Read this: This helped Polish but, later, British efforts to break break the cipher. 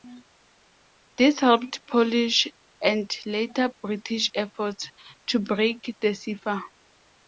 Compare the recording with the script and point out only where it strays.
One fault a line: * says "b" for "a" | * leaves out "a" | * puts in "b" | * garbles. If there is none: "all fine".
* says "and" for "but"
* leaves out "break"